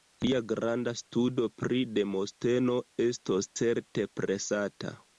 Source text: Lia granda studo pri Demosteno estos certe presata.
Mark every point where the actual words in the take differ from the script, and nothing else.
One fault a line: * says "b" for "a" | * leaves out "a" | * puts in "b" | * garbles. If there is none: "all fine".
all fine